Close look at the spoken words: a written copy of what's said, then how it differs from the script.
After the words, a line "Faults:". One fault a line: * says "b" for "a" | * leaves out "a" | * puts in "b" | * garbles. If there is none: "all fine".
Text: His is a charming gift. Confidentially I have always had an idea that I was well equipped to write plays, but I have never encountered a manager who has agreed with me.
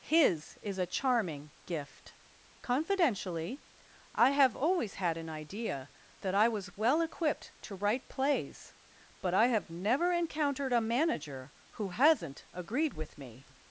His is a charming gift. Confidentially I have always had an idea that I was well equipped to write plays, but I have never encountered a manager who hasn't agreed with me.
Faults:
* says "hasn't" for "has"